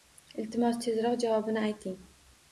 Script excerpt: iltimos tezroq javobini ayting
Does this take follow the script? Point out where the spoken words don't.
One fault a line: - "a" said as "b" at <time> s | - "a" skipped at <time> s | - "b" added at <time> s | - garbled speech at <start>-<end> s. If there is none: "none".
none